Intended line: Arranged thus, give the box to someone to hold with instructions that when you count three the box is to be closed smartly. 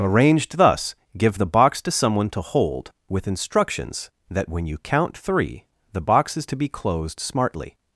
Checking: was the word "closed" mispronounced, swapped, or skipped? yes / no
no